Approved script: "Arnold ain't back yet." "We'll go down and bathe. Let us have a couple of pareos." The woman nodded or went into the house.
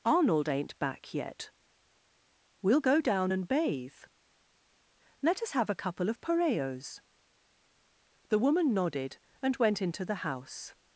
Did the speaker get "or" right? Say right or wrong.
wrong